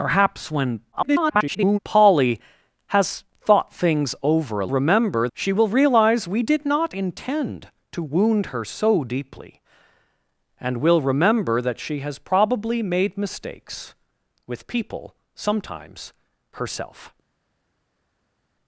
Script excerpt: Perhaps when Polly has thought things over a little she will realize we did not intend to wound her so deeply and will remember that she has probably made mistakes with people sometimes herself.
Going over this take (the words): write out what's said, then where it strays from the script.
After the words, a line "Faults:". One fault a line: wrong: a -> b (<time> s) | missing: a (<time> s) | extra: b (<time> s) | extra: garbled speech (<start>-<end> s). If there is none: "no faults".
Perhaps when [garbled] Polly has thought things over a remember she will realize we did not intend to wound her so deeply and will remember that she has probably made mistakes with people sometimes herself.
Faults:
extra: garbled speech (0.9-1.8 s)
wrong: little -> remember (4.7 s)